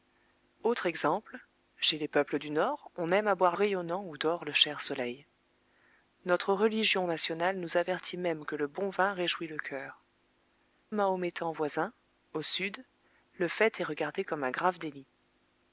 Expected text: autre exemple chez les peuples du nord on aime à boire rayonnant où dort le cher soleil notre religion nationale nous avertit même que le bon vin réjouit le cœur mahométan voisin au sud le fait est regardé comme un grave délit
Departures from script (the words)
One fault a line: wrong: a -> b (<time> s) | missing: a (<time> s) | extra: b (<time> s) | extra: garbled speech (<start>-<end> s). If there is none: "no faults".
no faults